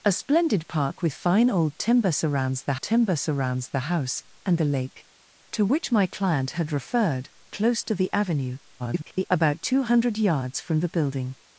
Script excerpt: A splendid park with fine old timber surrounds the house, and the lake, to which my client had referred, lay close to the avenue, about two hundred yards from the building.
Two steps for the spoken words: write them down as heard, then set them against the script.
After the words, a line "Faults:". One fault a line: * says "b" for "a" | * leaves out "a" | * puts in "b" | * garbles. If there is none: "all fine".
A splendid park with fine old timber surrounds the timber surrounds the house, and the lake, to which my client had referred, close to the avenue, [garbled] about two hundred yards from the building.
Faults:
* puts in "timber surrounds the"
* leaves out "lay"
* garbles